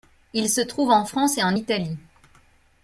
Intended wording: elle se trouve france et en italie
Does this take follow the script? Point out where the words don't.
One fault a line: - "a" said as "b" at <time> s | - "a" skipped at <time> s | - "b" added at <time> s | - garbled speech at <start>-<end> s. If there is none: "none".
- "elle" said as "il" at 0.3 s
- "en" added at 0.9 s